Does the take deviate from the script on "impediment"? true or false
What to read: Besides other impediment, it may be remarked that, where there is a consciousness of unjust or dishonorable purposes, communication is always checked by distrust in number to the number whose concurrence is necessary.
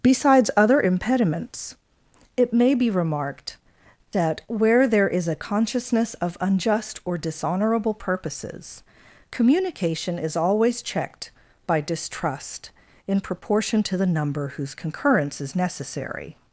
true